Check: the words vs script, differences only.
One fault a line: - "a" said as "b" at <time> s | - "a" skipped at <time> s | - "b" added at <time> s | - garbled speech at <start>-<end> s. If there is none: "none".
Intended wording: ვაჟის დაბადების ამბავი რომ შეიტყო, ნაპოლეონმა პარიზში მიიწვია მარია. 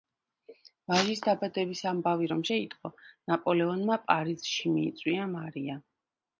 none